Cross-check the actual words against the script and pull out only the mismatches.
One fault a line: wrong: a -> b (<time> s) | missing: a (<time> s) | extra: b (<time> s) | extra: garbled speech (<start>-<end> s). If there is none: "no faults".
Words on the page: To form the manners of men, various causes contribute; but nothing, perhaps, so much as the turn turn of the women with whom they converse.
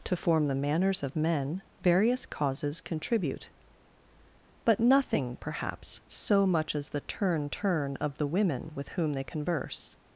no faults